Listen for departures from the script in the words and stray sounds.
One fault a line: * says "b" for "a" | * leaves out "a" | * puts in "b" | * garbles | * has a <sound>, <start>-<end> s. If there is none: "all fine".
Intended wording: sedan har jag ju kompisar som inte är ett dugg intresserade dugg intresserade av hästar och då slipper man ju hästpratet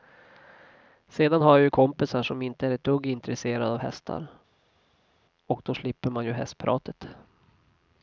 * leaves out "dugg intresserade"